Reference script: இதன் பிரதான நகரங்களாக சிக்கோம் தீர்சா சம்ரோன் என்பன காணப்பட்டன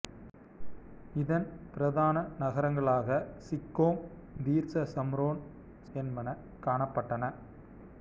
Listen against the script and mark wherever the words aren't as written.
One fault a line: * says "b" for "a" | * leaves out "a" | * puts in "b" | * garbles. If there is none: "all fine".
all fine